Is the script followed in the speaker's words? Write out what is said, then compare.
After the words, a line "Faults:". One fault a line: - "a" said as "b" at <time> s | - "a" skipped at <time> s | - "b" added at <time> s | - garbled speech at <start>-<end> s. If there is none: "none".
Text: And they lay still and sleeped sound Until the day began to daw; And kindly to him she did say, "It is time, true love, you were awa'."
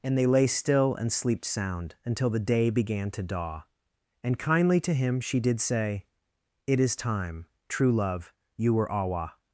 And they lay still and sleeped sound Until the day began to daw; And kindly to him she did say, "It is time, true love, you were awa'."
Faults:
none